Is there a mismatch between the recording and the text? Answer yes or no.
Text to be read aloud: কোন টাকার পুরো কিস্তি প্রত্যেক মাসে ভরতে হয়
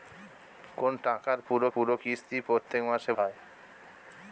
yes